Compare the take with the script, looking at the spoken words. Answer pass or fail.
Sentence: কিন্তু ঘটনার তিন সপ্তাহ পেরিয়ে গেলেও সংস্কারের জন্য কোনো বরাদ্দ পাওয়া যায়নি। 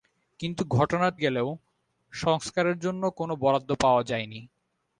fail